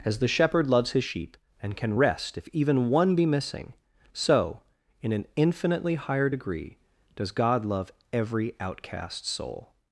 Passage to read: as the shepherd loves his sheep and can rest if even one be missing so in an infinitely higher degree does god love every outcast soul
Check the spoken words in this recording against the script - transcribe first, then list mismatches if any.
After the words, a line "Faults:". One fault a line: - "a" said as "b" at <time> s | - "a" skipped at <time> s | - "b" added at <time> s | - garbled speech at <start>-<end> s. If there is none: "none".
as the shepherd loves his sheep and can rest if even one be missing so in an infinitely higher degree does god love every outcast soul
Faults:
none